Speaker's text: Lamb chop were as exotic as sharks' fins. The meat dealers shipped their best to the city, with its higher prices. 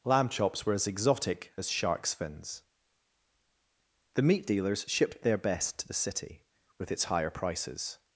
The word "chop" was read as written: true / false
false